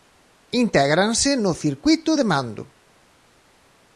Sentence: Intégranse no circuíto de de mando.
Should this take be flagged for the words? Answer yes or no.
yes